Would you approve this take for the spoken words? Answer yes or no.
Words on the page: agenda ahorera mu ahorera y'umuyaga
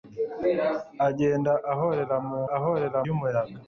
yes